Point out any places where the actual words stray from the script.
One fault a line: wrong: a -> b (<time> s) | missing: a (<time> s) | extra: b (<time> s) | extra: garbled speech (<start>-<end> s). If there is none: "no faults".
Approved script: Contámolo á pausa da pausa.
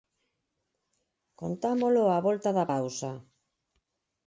wrong: pausa -> volta (2.3 s)